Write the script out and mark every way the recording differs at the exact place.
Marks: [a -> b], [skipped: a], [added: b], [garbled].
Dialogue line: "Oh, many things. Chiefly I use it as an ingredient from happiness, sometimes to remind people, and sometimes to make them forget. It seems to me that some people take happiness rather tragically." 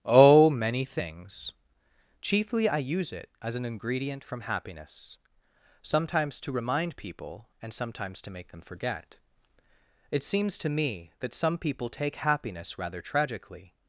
"Oh, many things. Chiefly I use it as an ingredient from happiness, sometimes to remind people, and sometimes to make them forget. It seems to me that some people take happiness rather tragically."